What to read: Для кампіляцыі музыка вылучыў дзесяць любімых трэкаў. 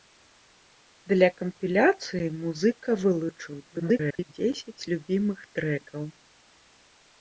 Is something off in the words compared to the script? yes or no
yes